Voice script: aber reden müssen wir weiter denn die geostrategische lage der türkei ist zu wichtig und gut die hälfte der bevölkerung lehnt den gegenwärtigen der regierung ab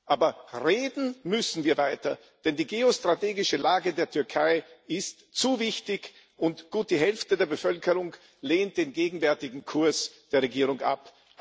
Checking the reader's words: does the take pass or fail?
fail